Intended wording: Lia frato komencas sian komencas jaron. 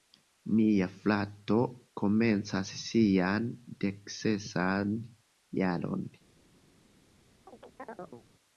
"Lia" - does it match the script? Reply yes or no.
no